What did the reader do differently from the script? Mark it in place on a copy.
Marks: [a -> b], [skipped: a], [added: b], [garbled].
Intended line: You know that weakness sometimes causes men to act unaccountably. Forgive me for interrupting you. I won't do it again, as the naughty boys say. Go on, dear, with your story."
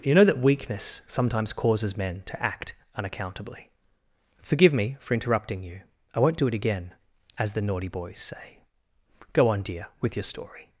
You know that weakness sometimes causes men to act unaccountably. Forgive me for interrupting you. I won't do it again, as the naughty boys say. Go on, dear, with your story."